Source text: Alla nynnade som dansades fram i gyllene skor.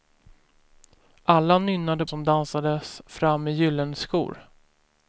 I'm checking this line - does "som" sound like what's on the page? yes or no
yes